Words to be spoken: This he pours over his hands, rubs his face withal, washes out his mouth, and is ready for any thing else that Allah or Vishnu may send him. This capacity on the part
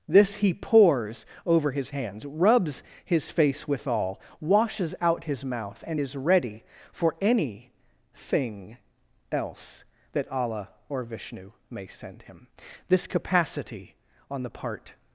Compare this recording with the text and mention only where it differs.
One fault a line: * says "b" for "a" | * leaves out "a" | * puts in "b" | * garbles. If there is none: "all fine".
all fine